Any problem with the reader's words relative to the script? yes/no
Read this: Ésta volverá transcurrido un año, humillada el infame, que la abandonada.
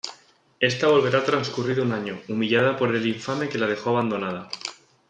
yes